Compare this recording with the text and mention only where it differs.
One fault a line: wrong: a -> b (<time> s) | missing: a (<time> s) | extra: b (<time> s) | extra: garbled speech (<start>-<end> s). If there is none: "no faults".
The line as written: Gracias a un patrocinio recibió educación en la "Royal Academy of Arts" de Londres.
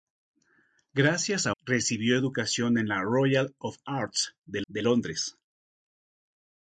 missing: un patrocinio (1.5 s)
missing: Academy (3.6 s)
extra: de (4.7 s)